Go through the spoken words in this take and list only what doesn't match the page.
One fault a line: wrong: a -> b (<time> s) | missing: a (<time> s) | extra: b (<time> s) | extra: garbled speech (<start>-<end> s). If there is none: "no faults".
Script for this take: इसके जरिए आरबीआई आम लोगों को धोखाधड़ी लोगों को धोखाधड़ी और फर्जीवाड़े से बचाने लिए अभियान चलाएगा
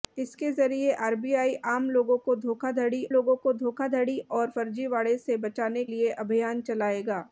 no faults